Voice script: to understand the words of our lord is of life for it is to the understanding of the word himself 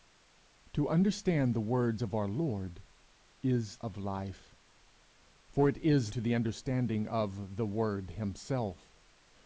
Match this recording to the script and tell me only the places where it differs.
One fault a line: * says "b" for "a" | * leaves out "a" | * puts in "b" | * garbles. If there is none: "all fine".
all fine